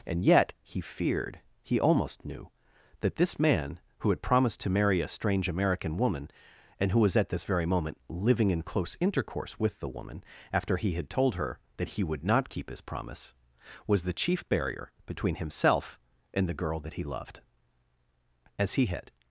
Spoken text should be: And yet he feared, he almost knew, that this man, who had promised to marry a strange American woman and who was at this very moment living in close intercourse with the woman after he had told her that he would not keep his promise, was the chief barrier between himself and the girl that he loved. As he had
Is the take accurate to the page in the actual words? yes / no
yes